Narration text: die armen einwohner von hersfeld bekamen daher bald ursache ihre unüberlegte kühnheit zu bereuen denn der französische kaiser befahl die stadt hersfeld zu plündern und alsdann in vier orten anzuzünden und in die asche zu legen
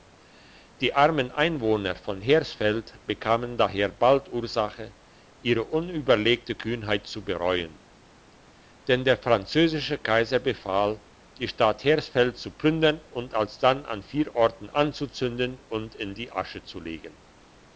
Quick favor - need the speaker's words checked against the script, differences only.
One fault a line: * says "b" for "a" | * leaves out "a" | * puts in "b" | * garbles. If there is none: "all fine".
* says "an" for "in"